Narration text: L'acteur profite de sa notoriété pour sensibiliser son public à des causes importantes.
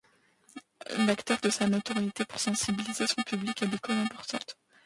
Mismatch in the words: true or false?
true